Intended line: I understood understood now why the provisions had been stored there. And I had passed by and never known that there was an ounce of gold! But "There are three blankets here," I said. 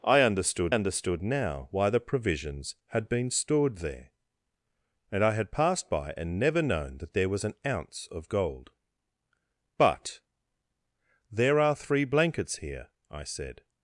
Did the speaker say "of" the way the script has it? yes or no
yes